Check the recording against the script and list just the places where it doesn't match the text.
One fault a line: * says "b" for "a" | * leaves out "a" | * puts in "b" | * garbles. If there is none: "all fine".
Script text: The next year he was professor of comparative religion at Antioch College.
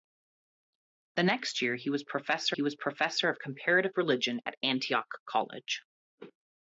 * puts in "he was professor"